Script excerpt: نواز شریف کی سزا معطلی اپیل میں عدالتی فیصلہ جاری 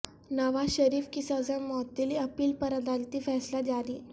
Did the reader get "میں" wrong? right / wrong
wrong